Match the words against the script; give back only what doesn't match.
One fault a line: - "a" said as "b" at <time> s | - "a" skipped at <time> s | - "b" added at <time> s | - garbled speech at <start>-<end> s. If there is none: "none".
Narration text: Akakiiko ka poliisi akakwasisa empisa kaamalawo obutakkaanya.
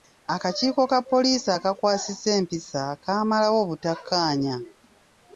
none